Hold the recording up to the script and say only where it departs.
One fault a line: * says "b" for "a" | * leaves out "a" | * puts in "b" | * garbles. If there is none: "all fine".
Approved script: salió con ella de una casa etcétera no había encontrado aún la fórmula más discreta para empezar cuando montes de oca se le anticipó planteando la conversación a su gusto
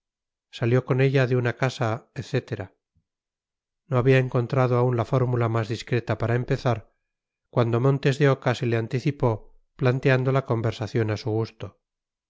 all fine